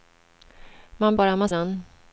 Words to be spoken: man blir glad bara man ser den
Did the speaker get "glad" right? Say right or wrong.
wrong